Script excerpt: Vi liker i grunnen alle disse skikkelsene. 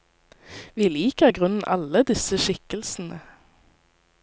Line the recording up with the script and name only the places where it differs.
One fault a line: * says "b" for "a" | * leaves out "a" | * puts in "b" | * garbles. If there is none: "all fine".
all fine